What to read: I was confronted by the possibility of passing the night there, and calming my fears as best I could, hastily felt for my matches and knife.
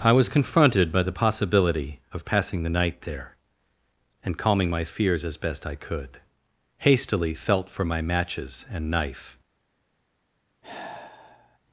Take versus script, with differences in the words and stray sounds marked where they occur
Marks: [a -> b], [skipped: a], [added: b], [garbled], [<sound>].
I was confronted by the possibility of passing the night there, and calming my fears as best I could, hastily felt for my matches and knife. [sigh]